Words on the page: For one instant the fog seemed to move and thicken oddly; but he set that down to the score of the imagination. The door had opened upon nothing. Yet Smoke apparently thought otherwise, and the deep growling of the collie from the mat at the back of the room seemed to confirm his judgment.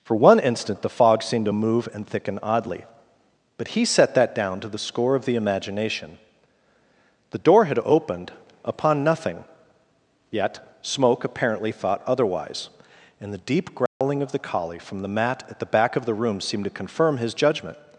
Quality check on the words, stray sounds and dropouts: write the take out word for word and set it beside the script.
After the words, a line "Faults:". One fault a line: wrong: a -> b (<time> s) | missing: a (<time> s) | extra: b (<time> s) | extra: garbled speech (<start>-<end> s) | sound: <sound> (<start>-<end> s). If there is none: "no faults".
For one instant the fog seemed to move and thicken oddly; but he set that down to the score of the imagination. The door had opened upon nothing. Yet Smoke apparently thought otherwise, and the deep growling of the collie from the mat at the back of the room seemed to confirm his judgment.
Faults:
sound: dropout (13.9-14.0 s)